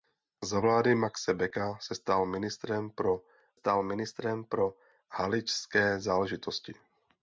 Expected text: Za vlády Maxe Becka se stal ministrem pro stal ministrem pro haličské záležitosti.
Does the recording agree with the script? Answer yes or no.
yes